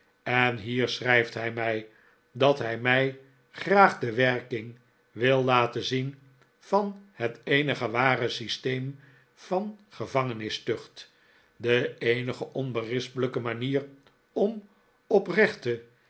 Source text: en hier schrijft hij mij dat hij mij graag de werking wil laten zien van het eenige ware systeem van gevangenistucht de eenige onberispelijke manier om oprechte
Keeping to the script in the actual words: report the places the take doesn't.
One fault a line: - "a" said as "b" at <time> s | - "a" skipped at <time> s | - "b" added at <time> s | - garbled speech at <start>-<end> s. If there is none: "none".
none